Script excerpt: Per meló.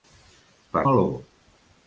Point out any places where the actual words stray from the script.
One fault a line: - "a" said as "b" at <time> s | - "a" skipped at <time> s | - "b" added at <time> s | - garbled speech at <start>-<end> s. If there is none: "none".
none